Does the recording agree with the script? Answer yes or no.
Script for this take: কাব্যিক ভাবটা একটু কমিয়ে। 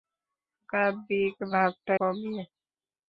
no